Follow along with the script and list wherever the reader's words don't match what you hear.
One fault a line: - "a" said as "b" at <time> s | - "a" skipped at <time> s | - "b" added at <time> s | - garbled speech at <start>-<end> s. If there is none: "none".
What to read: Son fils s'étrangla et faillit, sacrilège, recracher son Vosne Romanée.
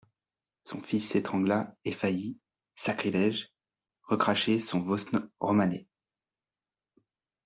none